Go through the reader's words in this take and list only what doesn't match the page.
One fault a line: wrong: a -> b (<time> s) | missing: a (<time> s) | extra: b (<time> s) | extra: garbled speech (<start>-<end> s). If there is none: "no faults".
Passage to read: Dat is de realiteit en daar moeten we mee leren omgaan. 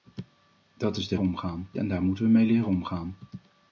wrong: realiteit -> omgaan (1.2 s)